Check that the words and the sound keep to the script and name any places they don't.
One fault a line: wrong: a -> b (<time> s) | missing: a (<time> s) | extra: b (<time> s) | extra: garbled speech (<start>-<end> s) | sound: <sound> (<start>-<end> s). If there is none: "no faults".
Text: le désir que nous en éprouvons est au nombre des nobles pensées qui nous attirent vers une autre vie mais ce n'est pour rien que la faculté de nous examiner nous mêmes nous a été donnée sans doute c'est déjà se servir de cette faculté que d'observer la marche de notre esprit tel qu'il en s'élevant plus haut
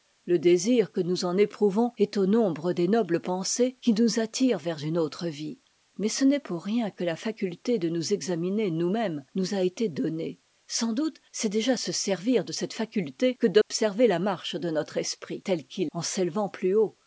sound: dropout (13.6-13.7 s)